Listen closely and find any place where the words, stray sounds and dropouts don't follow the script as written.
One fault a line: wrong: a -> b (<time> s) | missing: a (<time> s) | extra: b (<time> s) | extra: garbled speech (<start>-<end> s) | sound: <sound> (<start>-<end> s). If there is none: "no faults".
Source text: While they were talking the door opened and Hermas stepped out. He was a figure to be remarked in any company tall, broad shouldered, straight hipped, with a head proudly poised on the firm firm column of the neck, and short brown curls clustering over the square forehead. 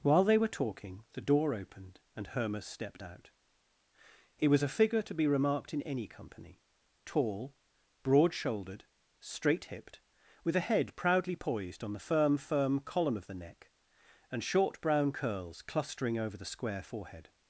no faults